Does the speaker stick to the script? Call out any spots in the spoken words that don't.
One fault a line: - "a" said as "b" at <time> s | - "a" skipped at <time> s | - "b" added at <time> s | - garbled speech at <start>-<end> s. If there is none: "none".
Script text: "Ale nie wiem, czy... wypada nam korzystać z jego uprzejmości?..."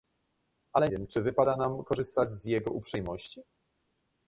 - "nie" skipped at 0.9 s